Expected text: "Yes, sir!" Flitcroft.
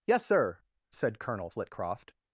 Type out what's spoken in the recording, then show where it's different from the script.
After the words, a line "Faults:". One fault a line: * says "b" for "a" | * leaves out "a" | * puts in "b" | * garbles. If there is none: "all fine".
"Yes, sir!" said Colonel Flitcroft.
Faults:
* puts in "said Colonel"